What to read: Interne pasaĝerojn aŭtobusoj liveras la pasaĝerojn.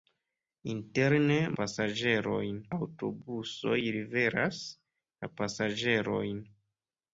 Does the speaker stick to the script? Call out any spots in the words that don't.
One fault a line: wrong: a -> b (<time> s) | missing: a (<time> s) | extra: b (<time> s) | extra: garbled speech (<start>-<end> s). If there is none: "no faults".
no faults